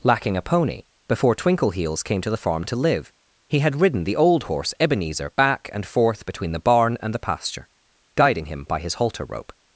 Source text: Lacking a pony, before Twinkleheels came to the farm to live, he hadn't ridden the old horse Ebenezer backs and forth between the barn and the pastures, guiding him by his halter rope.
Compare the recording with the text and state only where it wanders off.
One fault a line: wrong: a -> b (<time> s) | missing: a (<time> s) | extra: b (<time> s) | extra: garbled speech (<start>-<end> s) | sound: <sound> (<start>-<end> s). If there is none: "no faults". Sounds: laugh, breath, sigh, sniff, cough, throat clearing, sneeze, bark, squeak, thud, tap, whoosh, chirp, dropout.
wrong: hadn't -> had (3.6 s)
wrong: backs -> back (5.3 s)
wrong: pastures -> pasture (7.2 s)